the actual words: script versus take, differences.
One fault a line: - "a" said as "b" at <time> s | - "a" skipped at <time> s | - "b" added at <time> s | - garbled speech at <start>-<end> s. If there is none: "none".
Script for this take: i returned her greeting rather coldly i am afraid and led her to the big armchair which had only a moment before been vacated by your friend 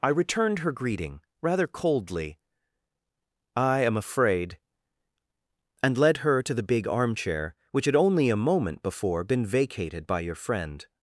none